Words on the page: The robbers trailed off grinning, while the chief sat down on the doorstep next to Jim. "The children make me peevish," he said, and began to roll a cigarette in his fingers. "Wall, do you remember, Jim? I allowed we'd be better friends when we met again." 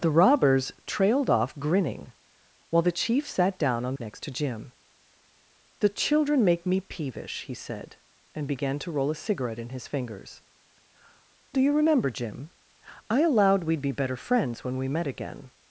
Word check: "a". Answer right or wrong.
right